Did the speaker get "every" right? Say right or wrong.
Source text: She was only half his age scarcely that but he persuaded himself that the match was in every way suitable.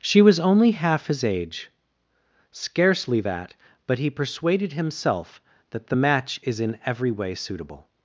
right